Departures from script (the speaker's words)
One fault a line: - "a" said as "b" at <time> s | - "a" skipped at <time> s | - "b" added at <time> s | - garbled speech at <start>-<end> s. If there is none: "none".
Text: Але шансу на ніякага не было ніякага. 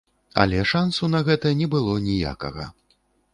- "ніякага" said as "гэта" at 1.3 s